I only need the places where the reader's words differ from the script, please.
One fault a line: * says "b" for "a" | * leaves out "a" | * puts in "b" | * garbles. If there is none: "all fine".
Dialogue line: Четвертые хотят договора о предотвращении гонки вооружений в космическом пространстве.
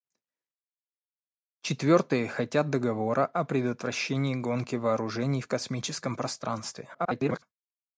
* garbles